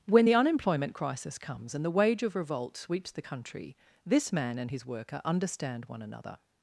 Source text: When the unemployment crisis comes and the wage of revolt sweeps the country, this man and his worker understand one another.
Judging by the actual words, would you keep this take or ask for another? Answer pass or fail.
pass